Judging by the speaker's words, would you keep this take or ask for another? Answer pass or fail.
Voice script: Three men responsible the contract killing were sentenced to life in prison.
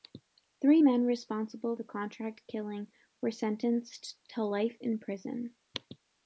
pass